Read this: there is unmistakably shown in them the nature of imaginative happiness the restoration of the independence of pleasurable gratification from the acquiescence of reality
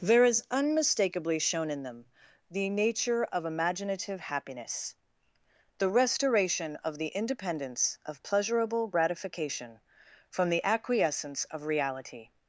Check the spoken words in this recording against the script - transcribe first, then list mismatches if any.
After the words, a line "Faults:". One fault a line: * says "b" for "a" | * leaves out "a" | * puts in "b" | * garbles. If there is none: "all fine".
there is unmistakably shown in them the nature of imaginative happiness the restoration of the independence of pleasurable gratification from the acquiescence of reality
Faults:
all fine